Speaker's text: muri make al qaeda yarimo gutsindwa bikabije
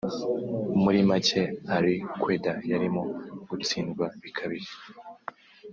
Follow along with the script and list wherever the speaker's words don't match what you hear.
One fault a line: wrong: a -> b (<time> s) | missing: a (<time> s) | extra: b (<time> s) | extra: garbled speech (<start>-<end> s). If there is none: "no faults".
no faults